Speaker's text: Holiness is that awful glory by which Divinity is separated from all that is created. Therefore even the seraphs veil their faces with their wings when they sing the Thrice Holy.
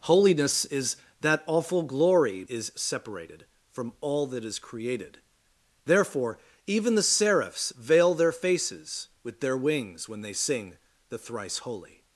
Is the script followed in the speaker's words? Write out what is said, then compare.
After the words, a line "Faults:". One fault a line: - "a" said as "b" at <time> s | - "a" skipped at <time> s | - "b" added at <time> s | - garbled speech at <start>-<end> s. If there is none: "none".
Holiness is that awful glory is separated from all that is created. Therefore even the seraphs veil their faces with their wings when they sing the Thrice Holy.
Faults:
- "by which Divinity" skipped at 2.4 s